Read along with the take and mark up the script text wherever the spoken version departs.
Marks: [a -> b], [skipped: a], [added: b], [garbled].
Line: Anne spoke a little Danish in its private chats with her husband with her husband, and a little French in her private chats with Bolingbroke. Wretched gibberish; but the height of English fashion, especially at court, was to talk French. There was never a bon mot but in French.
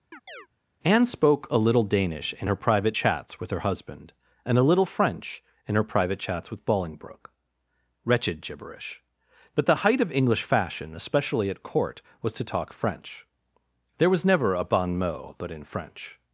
Anne spoke a little Danish in [its -> her] private chats with her husband [skipped: with her husband,] and a little French in her private chats with Bolingbroke. Wretched gibberish; but the height of English fashion, especially at court, was to talk French. There was never a bon mot but in French.